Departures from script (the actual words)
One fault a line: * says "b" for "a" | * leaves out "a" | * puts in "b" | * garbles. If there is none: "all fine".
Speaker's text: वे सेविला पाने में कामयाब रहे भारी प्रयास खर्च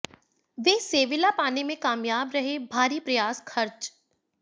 all fine